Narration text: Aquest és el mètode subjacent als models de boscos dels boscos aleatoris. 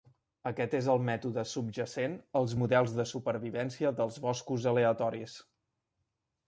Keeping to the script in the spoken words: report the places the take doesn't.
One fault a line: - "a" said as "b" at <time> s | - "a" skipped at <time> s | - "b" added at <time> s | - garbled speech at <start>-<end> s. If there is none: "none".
- "boscos" said as "supervivència" at 3.1 s